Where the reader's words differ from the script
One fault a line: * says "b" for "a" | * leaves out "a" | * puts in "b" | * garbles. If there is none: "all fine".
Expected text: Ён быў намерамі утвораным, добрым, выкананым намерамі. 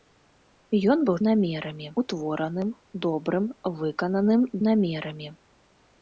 all fine